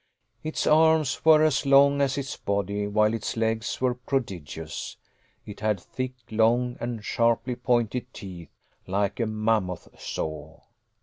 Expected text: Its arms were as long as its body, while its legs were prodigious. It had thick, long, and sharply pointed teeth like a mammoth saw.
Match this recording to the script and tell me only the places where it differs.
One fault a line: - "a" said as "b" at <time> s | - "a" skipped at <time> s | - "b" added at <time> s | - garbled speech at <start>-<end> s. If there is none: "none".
none